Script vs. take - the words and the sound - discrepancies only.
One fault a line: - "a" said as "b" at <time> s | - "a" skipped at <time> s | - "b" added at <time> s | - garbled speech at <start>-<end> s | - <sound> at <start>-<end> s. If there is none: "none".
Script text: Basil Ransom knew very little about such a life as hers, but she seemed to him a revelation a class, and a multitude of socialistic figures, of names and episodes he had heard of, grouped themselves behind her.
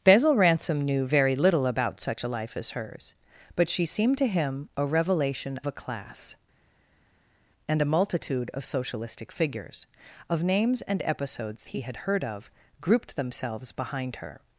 none